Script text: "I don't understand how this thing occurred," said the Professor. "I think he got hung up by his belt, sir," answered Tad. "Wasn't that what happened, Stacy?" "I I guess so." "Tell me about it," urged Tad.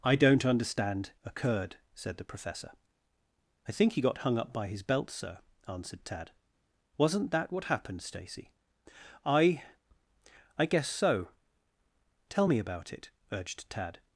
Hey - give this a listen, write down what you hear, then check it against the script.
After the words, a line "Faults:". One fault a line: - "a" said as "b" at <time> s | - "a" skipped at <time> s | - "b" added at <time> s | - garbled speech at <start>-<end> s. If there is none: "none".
"I don't understand occurred," said the Professor. "I think he got hung up by his belt, sir," answered Tad. "Wasn't that what happened, Stacy?" "I I guess so." "Tell me about it," urged Tad.
Faults:
- "how this thing" skipped at 1.1 s